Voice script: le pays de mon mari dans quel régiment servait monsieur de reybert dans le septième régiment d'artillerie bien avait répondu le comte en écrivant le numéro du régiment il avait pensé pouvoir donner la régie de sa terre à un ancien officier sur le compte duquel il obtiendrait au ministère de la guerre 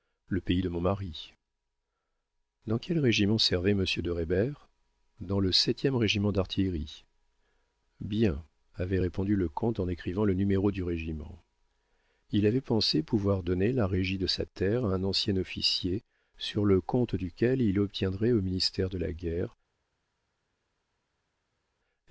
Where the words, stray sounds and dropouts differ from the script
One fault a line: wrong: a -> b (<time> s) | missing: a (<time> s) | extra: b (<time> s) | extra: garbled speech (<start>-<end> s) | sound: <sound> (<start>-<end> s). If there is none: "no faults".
no faults